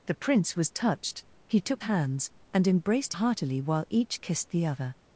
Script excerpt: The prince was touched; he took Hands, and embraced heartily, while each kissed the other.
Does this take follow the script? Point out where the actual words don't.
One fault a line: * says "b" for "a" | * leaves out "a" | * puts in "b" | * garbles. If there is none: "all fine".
all fine